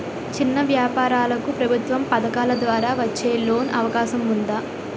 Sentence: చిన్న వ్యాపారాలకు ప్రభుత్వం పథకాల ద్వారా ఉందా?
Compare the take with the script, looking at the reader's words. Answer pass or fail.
fail